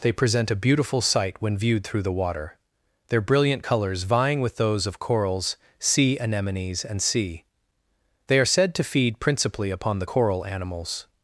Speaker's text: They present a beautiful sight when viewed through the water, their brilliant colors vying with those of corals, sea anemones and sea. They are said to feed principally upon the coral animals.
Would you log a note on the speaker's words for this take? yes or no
no